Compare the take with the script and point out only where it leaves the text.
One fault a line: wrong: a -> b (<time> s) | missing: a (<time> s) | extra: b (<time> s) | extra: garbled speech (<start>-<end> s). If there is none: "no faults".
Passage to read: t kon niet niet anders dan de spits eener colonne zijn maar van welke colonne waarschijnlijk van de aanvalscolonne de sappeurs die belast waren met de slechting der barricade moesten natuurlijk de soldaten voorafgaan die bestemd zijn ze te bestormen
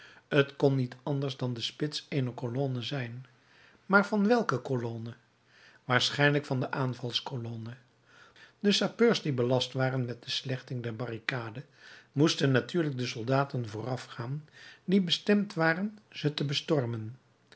missing: niet (0.9 s)
wrong: zijn -> waren (15.5 s)